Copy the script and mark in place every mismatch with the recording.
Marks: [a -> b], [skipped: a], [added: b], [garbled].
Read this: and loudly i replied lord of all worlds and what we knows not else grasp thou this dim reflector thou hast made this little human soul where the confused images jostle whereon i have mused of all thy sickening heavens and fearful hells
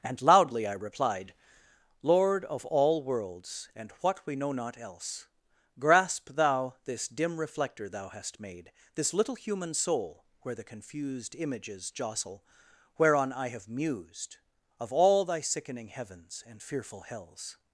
and loudly i replied lord of all worlds and what we [knows -> know] not else grasp thou this dim reflector thou hast made this little human soul where the confused images jostle whereon i have mused of all thy sickening heavens and fearful hells